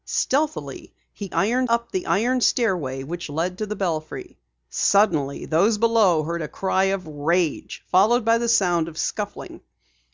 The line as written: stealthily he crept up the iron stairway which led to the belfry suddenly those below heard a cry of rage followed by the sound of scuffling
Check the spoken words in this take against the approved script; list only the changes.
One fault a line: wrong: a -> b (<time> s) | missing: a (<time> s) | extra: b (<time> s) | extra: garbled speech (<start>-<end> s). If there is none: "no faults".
wrong: crept -> iron (1.3 s)